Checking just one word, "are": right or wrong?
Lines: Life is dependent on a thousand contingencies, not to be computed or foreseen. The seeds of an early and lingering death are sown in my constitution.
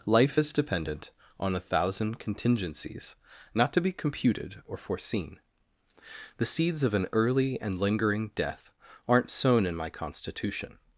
wrong